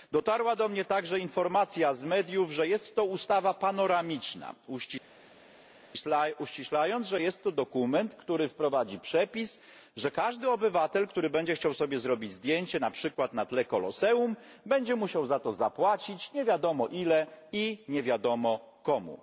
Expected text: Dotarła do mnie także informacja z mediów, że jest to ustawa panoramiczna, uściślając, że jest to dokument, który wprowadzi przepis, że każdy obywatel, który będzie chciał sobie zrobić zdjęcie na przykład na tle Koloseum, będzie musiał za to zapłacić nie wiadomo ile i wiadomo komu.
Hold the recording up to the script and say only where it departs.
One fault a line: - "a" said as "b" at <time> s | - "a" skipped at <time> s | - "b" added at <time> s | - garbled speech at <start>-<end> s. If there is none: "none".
- "nie" added at 17.9 s